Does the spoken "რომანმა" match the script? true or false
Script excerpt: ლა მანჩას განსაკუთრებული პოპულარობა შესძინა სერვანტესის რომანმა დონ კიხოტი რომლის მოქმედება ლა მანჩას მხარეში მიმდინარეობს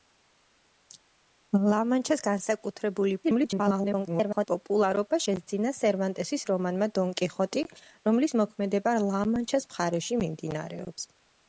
true